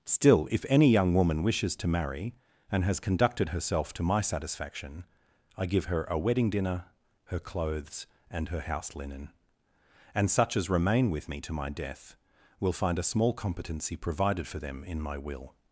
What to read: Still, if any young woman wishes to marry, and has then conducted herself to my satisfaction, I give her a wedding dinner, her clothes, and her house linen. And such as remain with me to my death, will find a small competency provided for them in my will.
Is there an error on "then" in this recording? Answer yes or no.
yes